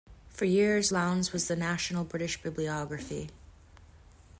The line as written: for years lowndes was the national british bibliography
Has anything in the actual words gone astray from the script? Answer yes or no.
no